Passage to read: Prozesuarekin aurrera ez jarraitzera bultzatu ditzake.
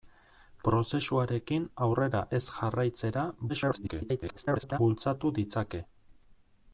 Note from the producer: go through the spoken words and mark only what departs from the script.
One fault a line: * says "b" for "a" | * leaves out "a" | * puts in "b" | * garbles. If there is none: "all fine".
* garbles